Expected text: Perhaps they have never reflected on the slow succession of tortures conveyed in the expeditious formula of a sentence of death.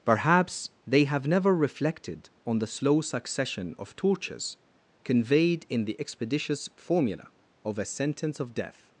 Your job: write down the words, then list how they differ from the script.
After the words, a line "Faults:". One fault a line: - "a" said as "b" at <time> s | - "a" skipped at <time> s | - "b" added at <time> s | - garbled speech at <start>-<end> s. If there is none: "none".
Perhaps they have never reflected on the slow succession of tortures conveyed in the expeditious formula of a sentence of death.
Faults:
none